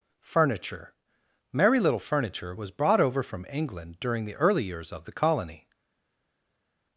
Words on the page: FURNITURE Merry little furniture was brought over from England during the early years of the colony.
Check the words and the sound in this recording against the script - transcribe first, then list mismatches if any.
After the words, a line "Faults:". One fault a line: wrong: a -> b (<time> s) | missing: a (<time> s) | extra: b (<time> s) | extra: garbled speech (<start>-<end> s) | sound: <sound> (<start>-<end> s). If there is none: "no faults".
FURNITURE Merry little furniture was brought over from England during the early years of the colony.
Faults:
no faults